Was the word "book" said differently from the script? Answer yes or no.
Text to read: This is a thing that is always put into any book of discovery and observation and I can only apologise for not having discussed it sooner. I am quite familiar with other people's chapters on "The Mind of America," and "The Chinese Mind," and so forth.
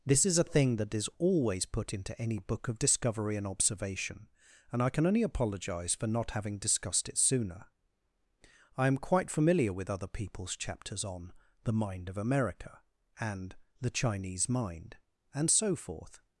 no